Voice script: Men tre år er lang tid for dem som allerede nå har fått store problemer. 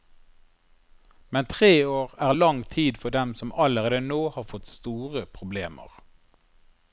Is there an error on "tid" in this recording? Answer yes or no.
no